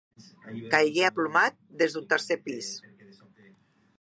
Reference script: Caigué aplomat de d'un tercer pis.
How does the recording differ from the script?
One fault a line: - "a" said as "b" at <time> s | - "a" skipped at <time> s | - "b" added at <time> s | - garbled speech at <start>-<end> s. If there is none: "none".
- "de" said as "des" at 1.8 s